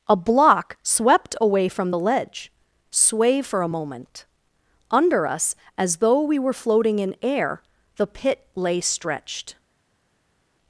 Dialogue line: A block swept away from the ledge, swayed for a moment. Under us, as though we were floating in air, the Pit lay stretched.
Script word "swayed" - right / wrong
wrong